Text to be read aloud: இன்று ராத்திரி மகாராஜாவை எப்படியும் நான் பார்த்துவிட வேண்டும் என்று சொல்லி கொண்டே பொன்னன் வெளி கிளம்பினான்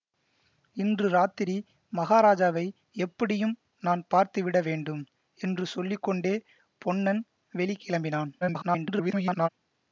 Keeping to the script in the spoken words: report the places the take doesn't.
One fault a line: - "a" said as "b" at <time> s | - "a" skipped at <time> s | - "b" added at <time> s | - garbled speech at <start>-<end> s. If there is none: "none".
- garbled speech at 8.4-9.5 s